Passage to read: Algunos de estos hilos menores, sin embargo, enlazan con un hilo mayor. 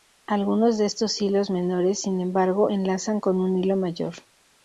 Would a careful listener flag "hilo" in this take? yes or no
no